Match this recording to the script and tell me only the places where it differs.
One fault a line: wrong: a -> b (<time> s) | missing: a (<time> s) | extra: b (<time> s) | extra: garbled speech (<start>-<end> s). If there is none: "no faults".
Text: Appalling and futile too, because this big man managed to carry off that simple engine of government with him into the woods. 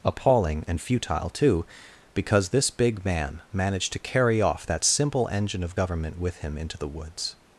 no faults